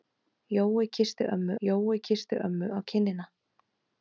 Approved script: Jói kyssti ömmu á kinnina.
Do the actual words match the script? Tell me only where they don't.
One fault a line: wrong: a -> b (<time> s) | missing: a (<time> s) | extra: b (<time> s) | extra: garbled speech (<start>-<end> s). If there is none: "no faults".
extra: jói kyssti ömmu (1.7 s)